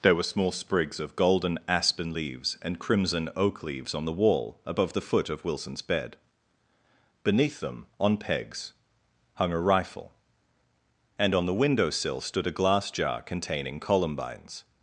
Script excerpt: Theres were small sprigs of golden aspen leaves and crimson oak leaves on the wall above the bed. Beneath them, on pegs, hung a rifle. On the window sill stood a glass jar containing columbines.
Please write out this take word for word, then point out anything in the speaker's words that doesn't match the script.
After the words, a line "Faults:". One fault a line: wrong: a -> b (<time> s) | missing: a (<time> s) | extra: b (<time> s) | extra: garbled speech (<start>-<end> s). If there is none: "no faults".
There were small sprigs of golden aspen leaves and crimson oak leaves on the wall above the foot of Wilson's bed. Beneath them, on pegs, hung a rifle. And on the window sill stood a glass jar containing columbines.
Faults:
wrong: Theres -> There (0.0 s)
extra: foot of Wilson's (5.0 s)
extra: And (11.2 s)